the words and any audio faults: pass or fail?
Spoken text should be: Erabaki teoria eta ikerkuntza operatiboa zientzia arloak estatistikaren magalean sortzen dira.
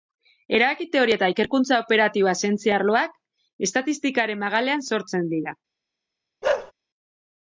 fail